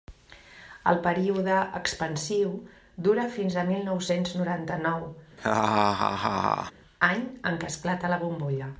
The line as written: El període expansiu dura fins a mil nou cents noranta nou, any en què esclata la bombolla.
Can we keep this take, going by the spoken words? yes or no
yes